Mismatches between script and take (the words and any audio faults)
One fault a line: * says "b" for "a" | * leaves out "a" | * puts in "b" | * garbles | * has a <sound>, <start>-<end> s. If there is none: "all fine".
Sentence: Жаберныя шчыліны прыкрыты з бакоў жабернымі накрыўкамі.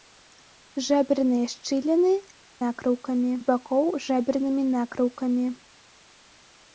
* says "накрыўкамі" for "прыкрыты"